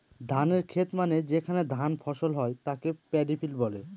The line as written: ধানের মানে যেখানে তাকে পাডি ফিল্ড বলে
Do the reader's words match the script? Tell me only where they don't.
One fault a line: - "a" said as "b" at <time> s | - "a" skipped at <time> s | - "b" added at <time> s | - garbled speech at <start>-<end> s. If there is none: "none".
- "খেত" added at 0.6 s
- "ধান ফসল হয়" added at 1.8 s